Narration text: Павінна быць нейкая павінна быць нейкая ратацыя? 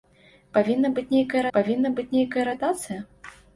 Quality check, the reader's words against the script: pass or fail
pass